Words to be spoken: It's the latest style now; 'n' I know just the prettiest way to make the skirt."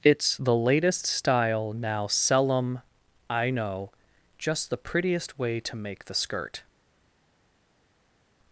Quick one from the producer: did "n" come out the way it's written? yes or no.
no